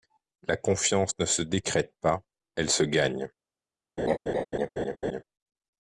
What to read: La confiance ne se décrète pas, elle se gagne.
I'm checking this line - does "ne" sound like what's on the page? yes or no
yes